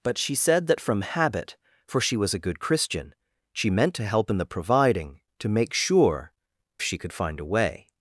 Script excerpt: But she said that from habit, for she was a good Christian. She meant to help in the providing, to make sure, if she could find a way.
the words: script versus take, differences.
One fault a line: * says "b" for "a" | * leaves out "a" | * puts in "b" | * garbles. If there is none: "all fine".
* leaves out "if"